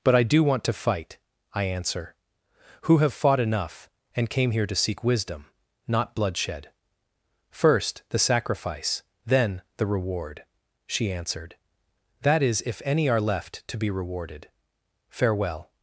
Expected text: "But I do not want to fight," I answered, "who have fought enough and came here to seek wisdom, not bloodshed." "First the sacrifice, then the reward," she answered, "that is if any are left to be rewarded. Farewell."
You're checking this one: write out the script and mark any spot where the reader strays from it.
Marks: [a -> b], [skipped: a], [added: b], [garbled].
"But I do [skipped: not] want to fight," I [answered, -> answer] "who have fought enough and came here to seek wisdom, not bloodshed." "First the sacrifice, then the reward," she answered, "that is if any are left to be rewarded. Farewell."